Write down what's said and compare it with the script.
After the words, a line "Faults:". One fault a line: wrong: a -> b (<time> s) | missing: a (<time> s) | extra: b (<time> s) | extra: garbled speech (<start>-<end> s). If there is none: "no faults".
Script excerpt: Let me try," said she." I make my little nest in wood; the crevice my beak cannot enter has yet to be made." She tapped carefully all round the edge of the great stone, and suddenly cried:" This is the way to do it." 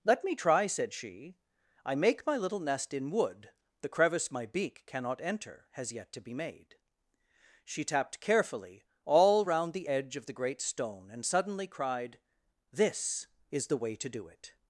Let me try," said she." I make my little nest in wood; the crevice my beak cannot enter has yet to be made." She tapped carefully all round the edge of the great stone, and suddenly cried:" This is the way to do it."
Faults:
no faults